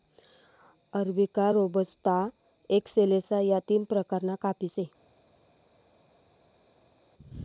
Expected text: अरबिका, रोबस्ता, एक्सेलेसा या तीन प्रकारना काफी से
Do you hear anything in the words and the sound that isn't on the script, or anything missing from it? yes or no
no